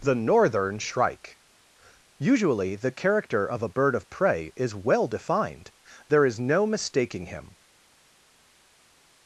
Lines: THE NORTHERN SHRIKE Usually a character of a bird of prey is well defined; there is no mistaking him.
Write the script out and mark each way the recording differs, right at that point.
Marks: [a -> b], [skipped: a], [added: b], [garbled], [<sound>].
THE NORTHERN SHRIKE Usually [a -> the] character of a bird of prey is well defined; there is no mistaking him.